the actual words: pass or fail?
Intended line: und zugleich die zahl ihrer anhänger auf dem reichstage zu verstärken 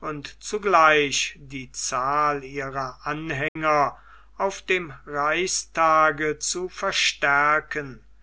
pass